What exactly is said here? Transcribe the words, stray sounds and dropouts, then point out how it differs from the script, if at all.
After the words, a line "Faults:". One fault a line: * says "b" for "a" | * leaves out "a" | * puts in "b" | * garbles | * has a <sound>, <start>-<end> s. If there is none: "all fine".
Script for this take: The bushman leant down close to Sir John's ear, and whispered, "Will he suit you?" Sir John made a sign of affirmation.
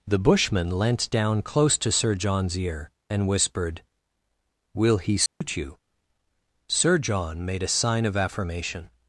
The bushman leant down close to Sir John's ear, and whispered, "Will he suit you?" Sir John made a sign of affirmation.
Faults:
* has a dropout, 5.3-5.4 s